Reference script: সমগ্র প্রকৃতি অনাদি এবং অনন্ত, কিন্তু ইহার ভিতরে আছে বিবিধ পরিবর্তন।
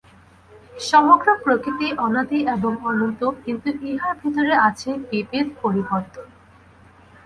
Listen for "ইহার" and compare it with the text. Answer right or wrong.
right